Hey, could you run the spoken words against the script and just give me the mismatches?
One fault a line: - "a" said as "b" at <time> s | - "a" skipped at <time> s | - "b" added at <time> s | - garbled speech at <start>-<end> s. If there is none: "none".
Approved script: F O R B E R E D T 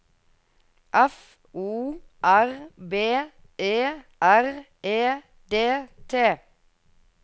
none